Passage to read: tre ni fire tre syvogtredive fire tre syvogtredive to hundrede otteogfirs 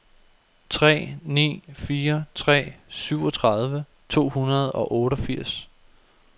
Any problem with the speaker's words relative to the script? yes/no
yes